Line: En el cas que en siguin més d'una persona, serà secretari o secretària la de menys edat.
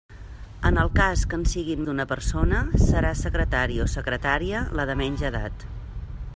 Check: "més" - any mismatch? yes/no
yes